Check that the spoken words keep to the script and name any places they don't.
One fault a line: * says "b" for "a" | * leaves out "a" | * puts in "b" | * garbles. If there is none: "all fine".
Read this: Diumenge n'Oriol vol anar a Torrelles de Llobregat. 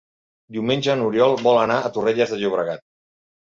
all fine